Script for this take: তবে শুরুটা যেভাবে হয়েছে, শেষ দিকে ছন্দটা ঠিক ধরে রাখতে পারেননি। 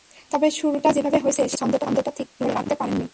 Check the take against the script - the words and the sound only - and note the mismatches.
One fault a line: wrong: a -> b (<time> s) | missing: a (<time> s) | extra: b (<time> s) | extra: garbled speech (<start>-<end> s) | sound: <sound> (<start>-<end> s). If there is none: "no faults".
missing: দিকে (1.5 s)